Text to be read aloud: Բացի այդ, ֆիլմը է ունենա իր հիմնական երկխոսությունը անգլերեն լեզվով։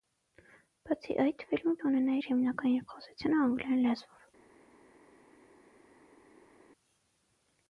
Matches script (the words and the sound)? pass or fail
pass